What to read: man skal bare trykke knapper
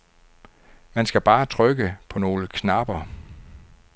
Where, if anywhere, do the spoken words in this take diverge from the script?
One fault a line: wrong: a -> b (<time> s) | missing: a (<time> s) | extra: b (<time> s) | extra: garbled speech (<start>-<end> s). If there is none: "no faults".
extra: på nogle (2.1 s)